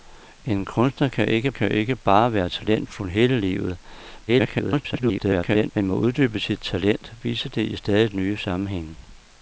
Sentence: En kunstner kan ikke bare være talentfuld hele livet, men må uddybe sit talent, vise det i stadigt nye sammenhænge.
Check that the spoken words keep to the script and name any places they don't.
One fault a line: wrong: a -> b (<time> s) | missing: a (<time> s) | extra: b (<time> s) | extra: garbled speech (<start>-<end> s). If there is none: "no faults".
extra: kan ikke (1.5 s)
extra: garbled speech (4.3-5.7 s)